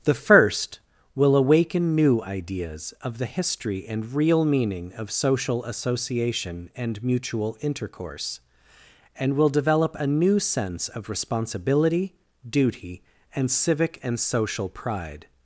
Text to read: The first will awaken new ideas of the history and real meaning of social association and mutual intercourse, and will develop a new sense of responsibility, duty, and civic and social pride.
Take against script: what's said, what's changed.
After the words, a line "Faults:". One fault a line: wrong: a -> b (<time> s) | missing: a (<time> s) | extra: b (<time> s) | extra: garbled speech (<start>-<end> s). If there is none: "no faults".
The first will awaken new ideas of the history and real meaning of social association and mutual intercourse, and will develop a new sense of responsibility, duty, and civic and social pride.
Faults:
no faults